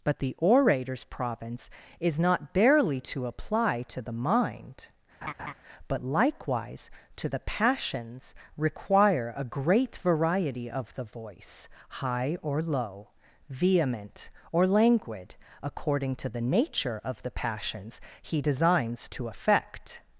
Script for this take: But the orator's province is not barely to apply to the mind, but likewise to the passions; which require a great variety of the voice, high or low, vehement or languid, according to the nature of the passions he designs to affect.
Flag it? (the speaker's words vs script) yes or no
yes